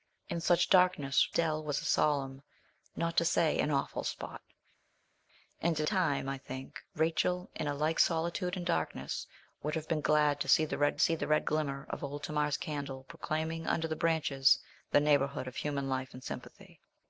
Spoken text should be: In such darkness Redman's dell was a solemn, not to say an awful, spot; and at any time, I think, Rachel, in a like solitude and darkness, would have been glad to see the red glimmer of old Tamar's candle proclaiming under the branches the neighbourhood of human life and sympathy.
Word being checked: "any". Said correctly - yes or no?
no